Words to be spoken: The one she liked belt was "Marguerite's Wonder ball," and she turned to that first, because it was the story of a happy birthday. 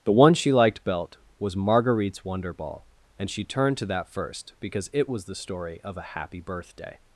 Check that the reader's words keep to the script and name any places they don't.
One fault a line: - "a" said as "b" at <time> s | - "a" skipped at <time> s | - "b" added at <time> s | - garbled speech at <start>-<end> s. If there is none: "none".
none